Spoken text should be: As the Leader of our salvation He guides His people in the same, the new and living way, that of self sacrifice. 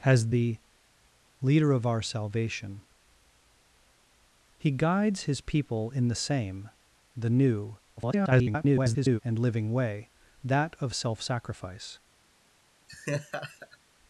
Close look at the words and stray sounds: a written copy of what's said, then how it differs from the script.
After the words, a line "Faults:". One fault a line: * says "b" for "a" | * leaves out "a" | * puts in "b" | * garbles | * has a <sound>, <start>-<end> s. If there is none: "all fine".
As the Leader of our salvation He guides His people in the same, the new [garbled] and living way, that of self sacrifice.
Faults:
* garbles
* has a laugh, 12.9-13.8 s